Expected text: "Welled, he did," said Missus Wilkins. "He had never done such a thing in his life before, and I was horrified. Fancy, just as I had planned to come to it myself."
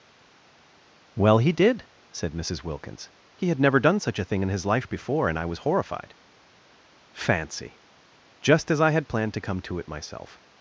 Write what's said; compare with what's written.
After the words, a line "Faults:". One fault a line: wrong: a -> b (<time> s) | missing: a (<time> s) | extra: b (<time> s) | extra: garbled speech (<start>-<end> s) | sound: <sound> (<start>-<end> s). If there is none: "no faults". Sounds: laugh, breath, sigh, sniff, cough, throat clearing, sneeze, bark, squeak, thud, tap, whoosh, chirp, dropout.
"Well, he did," said Missus Wilkins. "He had never done such a thing in his life before, and I was horrified. Fancy, just as I had planned to come to it myself."
Faults:
wrong: Welled -> Well (1.1 s)